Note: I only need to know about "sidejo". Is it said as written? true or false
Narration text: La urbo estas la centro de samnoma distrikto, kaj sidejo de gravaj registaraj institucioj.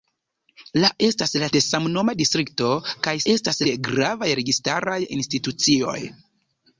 false